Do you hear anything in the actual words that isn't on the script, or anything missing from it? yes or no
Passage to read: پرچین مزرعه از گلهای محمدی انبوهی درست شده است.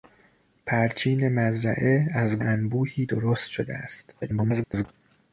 yes